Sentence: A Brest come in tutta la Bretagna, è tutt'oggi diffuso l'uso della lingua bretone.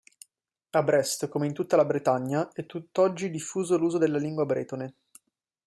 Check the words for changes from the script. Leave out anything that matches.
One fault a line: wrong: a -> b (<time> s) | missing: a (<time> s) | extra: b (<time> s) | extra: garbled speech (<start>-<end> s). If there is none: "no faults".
no faults